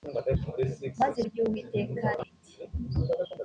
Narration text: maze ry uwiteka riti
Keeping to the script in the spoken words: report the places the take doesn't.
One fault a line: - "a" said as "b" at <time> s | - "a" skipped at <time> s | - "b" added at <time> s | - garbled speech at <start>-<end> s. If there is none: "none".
none